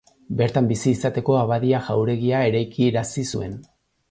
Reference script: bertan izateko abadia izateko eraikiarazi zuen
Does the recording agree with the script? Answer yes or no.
no